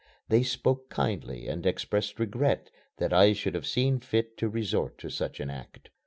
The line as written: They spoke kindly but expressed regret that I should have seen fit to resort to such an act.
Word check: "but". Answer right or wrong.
wrong